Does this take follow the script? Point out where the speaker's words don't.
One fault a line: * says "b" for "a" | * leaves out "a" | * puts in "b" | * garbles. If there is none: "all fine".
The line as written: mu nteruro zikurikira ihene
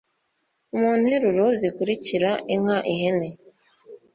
* puts in "inka"